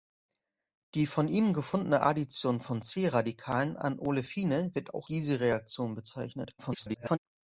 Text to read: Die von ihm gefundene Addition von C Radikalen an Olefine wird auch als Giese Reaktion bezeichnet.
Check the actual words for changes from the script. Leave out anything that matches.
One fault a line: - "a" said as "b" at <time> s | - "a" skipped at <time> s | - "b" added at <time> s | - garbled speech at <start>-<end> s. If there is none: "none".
- "als" skipped at 5.1 s
- garbled speech at 6.6-7.2 s